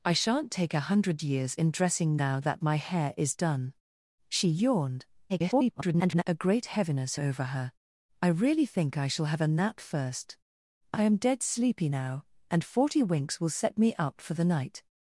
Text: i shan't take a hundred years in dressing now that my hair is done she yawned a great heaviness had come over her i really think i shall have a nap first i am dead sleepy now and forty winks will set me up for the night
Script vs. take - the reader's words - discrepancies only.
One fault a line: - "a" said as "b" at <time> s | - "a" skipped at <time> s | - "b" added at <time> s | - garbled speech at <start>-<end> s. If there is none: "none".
- garbled speech at 5.3-6.2 s
- "had come" skipped at 7.2 s